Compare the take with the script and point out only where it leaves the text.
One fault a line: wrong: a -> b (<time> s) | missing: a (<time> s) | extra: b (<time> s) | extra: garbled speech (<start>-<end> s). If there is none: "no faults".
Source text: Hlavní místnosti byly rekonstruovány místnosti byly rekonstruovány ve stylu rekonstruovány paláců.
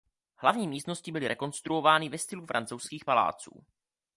missing: místnosti byly rekonstruovány (2.1 s)
wrong: rekonstruovány -> francouzských (2.5 s)